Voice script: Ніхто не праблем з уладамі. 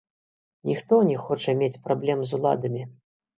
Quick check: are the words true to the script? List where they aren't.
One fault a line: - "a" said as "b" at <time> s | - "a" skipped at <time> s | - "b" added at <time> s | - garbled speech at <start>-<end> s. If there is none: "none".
- "хоча мець" added at 1.2 s